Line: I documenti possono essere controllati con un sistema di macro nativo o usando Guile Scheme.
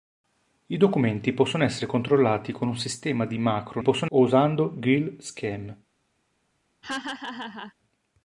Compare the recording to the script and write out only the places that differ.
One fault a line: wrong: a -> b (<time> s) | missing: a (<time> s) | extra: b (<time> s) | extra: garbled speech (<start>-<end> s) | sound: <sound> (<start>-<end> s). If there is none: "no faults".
wrong: nativo -> possono (3.8 s)
sound: laugh (6.8-7.7 s)